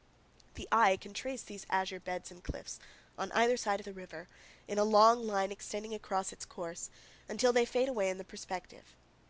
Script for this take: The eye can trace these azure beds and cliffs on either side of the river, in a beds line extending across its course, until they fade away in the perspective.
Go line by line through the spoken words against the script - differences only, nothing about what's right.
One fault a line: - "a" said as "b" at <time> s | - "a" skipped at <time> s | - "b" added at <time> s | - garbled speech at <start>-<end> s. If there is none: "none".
- "beds" said as "long" at 4.8 s